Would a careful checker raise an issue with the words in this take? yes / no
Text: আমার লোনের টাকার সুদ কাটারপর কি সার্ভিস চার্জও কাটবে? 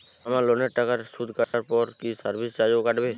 no